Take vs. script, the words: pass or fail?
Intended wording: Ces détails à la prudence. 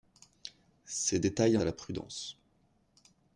pass